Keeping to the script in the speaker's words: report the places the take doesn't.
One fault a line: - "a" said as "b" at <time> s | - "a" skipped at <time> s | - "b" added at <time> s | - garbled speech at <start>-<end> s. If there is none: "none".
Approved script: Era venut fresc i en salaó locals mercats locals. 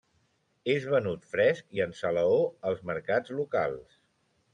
- "Era" said as "És" at 0.7 s
- "locals" said as "als" at 2.7 s